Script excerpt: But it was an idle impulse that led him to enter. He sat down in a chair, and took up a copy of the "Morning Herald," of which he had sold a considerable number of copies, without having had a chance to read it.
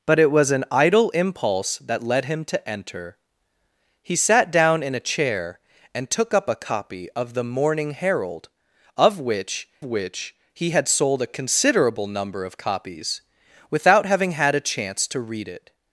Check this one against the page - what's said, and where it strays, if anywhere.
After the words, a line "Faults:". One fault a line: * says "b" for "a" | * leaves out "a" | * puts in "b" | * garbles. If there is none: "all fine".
But it was an idle impulse that led him to enter. He sat down in a chair, and took up a copy of the "Morning Herald," of which which he had sold a considerable number of copies, without having had a chance to read it.
Faults:
* puts in "which"